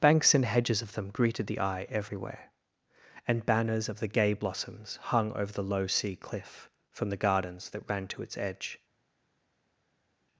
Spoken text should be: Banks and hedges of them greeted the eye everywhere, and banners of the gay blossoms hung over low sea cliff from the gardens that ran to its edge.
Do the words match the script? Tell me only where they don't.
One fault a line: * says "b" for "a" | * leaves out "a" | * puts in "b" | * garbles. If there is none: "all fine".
* puts in "the"